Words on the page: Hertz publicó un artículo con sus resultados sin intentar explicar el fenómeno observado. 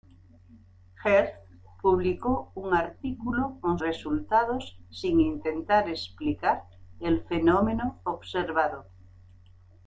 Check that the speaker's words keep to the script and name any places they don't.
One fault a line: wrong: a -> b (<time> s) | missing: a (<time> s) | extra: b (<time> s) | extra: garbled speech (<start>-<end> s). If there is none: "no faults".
missing: sus (3.8 s)